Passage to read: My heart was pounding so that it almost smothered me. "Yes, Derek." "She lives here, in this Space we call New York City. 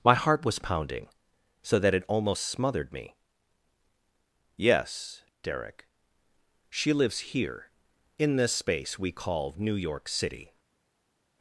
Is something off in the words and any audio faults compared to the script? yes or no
no